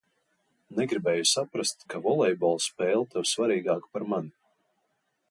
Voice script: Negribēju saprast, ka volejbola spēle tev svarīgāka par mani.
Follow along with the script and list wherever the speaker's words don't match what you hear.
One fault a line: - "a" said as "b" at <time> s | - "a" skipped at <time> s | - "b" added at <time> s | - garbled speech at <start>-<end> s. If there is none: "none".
none